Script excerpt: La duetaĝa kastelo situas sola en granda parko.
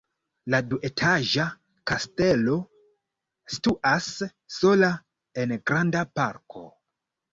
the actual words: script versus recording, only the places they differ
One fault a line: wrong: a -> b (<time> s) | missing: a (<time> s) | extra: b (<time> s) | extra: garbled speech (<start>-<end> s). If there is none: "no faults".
no faults